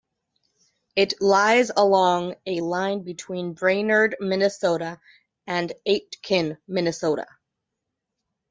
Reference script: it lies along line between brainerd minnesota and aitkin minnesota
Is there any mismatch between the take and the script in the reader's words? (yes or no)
yes